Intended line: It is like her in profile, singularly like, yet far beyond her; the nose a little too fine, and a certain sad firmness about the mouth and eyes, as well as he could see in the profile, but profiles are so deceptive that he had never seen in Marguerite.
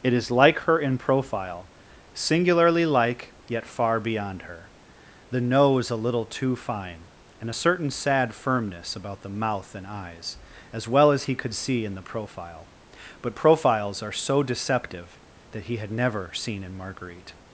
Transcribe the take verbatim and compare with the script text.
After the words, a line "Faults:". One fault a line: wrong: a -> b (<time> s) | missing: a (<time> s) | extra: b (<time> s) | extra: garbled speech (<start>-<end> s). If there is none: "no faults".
It is like her in profile, singularly like, yet far beyond her; the nose a little too fine, and a certain sad firmness about the mouth and eyes, as well as he could see in the profile, but profiles are so deceptive that he had never seen in Marguerite.
Faults:
no faults